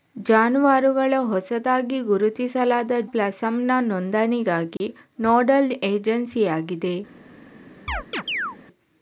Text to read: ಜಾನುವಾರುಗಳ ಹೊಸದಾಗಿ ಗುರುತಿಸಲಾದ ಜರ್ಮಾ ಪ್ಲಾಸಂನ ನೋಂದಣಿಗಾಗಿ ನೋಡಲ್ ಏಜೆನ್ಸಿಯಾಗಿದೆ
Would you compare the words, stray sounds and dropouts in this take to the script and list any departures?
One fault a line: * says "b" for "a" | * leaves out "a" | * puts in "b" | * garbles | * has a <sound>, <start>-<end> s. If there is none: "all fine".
* leaves out "ಜರ್ಮಾ"
* has a dropout, 4.8-4.8 s
* has a chirp, 7.9-8.6 s